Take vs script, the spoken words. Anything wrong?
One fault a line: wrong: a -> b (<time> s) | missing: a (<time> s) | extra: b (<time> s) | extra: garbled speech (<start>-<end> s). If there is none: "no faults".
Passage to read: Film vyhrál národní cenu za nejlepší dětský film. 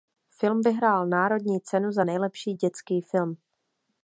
no faults